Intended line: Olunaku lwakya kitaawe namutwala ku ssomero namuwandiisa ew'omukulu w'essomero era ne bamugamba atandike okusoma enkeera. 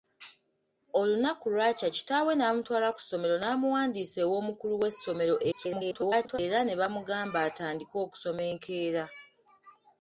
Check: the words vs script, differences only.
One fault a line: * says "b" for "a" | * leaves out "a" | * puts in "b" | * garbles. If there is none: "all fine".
* garbles